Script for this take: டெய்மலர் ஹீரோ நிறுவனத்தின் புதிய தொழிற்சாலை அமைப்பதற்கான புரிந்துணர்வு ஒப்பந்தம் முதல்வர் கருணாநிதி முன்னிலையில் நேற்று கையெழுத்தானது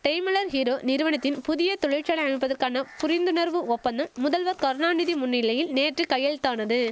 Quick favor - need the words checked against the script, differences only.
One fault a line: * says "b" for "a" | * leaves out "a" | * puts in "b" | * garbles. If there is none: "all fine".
all fine